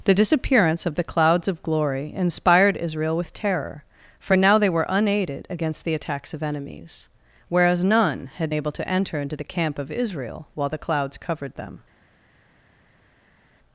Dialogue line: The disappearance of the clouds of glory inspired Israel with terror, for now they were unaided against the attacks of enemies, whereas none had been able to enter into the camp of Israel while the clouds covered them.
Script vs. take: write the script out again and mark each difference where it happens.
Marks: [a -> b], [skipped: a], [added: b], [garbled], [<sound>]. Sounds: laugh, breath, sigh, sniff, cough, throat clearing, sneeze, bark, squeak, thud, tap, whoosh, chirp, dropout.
The disappearance of the clouds of glory inspired Israel with terror, for now they were unaided against the attacks of enemies, whereas none had [skipped: been] able to enter into the camp of Israel while the clouds covered them.